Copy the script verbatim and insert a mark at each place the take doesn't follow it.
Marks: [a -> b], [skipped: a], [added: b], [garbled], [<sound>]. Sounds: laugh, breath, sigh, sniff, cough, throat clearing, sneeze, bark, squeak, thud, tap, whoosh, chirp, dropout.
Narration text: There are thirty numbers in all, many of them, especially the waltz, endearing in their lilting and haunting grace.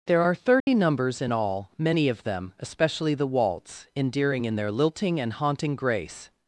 There are thirty [dropout] numbers in all, many of them, especially the waltz, endearing in their lilting and haunting grace.